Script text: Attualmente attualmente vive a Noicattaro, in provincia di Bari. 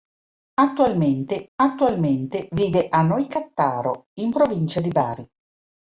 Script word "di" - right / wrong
right